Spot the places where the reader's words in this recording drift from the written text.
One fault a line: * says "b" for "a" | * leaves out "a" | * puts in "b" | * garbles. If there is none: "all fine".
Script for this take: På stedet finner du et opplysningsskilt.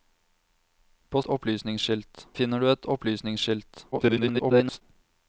* says "opplysningsskilt" for "stedet"
* garbles